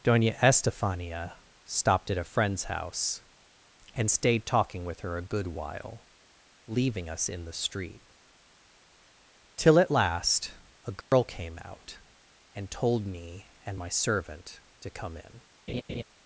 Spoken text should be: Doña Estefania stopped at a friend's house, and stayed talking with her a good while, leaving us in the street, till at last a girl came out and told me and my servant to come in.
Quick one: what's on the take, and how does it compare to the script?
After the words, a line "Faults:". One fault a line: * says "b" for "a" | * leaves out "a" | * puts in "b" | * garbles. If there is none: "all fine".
Doña Estefania stopped at a friend's house, and stayed talking with her a good while, leaving us in the street, till at last a girl came out and told me and my servant to come in.
Faults:
all fine